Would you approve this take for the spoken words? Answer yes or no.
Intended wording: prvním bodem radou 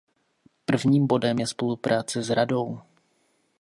no